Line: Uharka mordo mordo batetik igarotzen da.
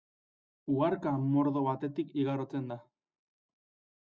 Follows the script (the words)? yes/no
no